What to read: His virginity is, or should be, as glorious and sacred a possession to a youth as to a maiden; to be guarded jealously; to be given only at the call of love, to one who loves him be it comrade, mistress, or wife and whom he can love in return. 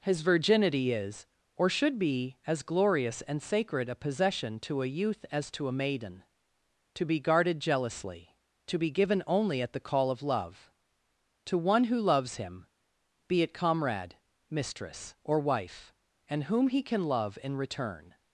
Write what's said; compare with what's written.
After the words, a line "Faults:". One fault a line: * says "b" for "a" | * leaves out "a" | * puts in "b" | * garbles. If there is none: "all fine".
His virginity is, or should be, as glorious and sacred a possession to a youth as to a maiden; to be guarded jealously; to be given only at the call of love, to one who loves him be it comrade, mistress, or wife and whom he can love in return.
Faults:
all fine